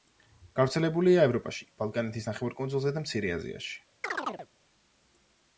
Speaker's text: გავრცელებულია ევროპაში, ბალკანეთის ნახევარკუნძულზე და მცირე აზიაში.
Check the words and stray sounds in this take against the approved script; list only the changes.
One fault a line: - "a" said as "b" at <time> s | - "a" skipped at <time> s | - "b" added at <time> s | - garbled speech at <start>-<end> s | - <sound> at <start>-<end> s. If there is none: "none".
- chirp at 4.0-4.5 s